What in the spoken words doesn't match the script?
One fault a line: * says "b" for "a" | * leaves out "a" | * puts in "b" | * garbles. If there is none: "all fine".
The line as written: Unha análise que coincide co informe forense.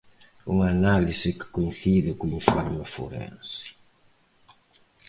all fine